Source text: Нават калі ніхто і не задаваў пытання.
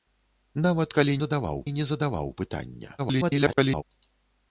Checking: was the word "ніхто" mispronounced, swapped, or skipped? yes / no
yes